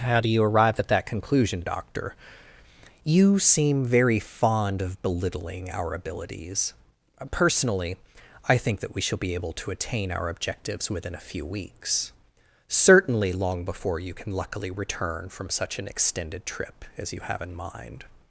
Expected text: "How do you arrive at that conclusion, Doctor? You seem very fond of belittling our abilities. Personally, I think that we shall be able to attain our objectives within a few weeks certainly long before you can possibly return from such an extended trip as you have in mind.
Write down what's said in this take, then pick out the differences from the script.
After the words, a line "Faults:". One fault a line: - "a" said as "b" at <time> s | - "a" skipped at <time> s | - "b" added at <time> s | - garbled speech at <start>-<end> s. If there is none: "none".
"How do you arrive at that conclusion, Doctor? You seem very fond of belittling our abilities. Personally, I think that we shall be able to attain our objectives within a few weeks certainly long before you can luckily return from such an extended trip as you have in mind.
Faults:
- "possibly" said as "luckily" at 14.3 s